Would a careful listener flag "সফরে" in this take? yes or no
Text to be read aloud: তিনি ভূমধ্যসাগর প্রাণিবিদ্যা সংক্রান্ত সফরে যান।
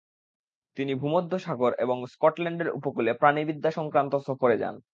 no